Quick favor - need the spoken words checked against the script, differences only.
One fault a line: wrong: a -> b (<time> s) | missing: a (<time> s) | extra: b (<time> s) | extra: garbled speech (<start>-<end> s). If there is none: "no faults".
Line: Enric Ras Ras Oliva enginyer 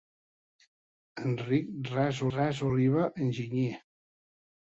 no faults